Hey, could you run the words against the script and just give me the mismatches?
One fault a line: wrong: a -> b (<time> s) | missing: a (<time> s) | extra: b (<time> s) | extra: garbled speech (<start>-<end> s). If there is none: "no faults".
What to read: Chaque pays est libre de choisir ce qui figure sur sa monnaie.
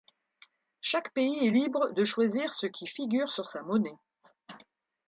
no faults